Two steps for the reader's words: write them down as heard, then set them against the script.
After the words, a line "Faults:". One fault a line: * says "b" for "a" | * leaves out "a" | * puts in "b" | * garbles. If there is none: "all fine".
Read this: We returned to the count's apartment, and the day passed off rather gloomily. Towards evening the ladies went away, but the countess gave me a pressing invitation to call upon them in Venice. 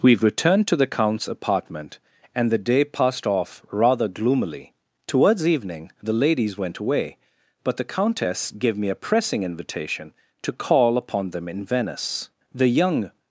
We returned to the count's apartment, and the day passed off rather gloomily. Towards evening the ladies went away, but the countess gave me a pressing invitation to call upon them in Venice. The young
Faults:
* puts in "The young"